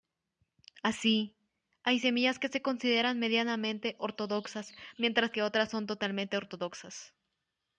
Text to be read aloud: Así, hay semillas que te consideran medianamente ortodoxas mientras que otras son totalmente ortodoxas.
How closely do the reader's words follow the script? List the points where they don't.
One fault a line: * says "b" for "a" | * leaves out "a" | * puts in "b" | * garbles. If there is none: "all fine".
* says "se" for "te"